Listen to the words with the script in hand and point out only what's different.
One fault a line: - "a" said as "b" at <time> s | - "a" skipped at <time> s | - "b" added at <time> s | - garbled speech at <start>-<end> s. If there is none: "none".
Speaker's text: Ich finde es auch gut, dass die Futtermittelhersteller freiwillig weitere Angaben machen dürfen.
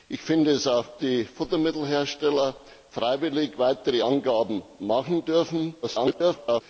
- "gut dass" skipped at 1.0 s
- garbled speech at 5.8-6.6 s